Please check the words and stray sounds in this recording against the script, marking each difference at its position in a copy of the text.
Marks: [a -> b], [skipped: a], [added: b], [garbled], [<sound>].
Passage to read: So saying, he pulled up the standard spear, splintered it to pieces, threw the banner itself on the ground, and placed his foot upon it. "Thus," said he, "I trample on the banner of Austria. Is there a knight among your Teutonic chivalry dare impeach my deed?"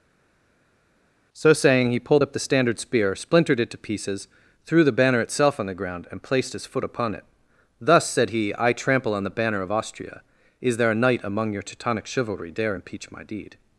So saying, he pulled up the standard spear, splintered it to pieces, threw the banner itself on the ground, and placed his foot upon it. "Thus," said he, "I trample on the banner of Austria. Is there a knight among your Teutonic chivalry dare impeach my deed?"